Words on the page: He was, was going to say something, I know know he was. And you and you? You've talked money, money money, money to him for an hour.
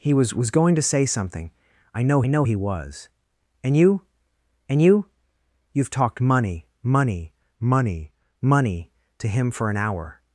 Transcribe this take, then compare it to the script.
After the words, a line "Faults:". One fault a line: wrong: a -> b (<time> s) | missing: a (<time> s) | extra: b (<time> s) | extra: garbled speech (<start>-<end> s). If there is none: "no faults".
He was, was going to say something, I know know he was. And you and you? You've talked money, money money, money to him for an hour.
Faults:
no faults